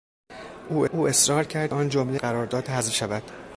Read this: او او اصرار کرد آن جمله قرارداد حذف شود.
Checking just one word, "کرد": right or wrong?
right